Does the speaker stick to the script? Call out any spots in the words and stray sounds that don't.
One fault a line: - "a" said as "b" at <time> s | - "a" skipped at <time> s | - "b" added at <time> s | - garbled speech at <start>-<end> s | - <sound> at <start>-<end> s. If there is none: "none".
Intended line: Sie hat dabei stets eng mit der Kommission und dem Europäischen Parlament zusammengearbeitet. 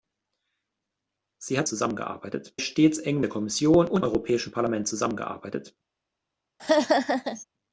- "dabei" said as "zusammengearbeitet" at 1.7 s
- "mit" skipped at 3.2 s
- "dem" skipped at 4.0 s
- laugh at 6.6-7.4 s